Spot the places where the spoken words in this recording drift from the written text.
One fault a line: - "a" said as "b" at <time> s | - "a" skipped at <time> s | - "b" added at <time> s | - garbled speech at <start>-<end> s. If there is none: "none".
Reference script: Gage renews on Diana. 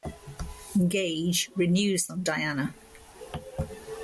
none